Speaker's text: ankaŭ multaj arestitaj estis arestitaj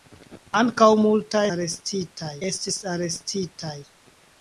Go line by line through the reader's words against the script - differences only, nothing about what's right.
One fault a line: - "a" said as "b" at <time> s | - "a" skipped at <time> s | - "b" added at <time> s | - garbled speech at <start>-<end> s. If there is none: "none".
none